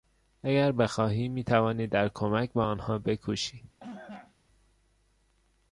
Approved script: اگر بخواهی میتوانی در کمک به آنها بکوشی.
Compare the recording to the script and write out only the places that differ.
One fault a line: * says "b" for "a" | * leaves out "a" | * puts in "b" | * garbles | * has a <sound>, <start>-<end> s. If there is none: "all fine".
* has a cough, 3.8-4.4 s